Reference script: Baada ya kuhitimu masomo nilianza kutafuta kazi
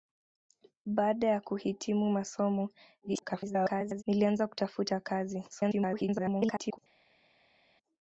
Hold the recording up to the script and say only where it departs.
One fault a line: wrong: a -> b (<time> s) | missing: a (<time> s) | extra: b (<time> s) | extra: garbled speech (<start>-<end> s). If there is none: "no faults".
extra: garbled speech (3.0-4.0 s)
extra: garbled speech (5.5-6.8 s)